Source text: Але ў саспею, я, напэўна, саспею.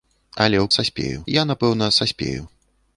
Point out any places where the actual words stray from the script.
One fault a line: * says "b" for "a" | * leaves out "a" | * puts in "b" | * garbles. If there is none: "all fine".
all fine